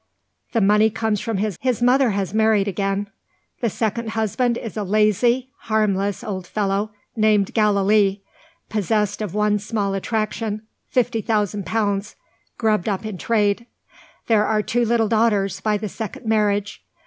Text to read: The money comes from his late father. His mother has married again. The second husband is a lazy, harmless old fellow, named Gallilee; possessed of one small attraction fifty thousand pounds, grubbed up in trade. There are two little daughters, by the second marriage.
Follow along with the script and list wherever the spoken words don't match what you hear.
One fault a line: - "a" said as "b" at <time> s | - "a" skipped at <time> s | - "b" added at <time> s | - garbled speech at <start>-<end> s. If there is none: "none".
- "late father" skipped at 1.6 s